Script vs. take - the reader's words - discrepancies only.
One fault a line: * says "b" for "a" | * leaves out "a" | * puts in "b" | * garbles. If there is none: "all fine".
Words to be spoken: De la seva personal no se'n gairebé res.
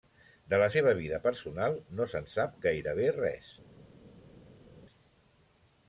* puts in "vida"
* puts in "sap"